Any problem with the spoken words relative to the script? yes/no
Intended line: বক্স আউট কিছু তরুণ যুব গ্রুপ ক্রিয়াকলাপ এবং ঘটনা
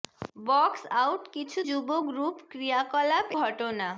yes